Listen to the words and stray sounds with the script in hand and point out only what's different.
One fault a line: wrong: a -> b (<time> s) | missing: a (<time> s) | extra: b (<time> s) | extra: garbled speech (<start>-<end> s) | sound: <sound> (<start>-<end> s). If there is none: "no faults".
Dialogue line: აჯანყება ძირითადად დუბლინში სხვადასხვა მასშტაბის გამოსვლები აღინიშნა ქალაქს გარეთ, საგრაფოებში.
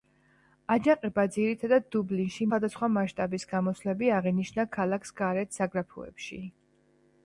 no faults